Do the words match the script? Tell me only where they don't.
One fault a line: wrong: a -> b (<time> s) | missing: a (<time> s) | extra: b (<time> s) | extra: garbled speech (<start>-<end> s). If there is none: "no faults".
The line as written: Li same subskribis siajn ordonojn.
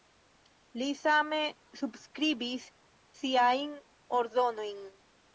no faults